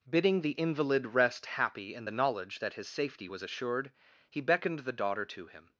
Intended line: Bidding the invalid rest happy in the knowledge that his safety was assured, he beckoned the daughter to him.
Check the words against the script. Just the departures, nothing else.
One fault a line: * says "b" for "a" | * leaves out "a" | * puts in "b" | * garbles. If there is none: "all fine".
all fine